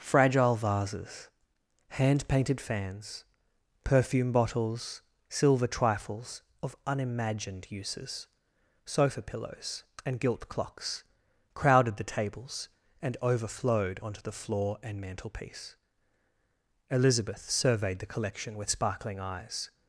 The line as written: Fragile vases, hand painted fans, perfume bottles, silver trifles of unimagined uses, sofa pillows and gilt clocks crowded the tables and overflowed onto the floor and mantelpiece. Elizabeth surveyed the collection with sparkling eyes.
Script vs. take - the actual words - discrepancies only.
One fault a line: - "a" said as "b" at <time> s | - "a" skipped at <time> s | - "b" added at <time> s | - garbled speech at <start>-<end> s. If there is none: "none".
none